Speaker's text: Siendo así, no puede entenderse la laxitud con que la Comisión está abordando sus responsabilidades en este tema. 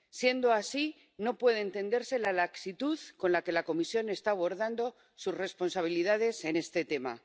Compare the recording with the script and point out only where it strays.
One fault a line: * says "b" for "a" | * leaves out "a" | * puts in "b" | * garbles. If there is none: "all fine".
* puts in "la"